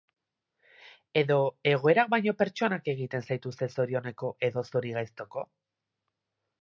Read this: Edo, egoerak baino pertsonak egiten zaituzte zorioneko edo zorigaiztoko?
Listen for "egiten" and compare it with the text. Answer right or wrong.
right